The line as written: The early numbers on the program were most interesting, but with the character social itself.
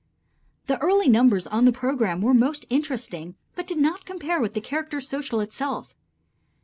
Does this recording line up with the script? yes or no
no